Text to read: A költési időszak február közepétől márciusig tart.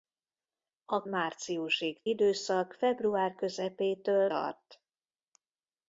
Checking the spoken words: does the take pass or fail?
fail